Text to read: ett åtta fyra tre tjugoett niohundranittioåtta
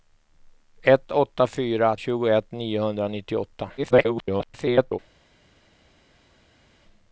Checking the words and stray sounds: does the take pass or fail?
fail